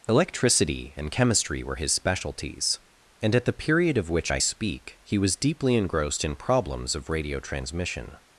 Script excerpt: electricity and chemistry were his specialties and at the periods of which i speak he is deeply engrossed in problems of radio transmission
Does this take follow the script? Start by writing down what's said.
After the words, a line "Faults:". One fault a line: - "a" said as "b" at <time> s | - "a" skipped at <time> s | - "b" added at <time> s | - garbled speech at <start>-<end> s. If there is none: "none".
electricity and chemistry were his specialties and at the period of which i speak he was deeply engrossed in problems of radio transmission
Faults:
- "periods" said as "period" at 3.5 s
- "is" said as "was" at 5.2 s